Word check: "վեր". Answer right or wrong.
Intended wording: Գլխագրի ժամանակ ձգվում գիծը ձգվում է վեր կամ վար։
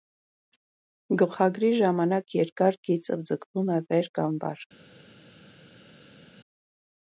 right